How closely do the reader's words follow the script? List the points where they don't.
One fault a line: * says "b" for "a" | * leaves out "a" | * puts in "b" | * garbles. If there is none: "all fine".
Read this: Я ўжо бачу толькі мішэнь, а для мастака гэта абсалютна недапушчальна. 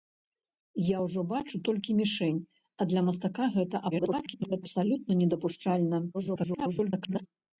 * garbles
* garbles